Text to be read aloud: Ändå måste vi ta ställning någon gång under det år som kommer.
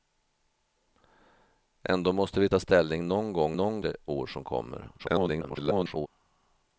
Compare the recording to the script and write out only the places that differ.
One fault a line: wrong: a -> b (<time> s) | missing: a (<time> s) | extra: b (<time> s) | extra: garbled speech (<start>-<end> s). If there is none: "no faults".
wrong: under -> någon (3.5 s)
extra: garbled speech (5.0-6.1 s)